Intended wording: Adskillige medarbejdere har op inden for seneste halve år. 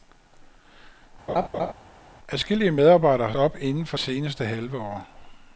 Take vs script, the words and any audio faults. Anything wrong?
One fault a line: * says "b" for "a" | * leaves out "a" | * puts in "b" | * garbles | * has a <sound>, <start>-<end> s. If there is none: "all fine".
* has a laugh, 1.3-1.7 s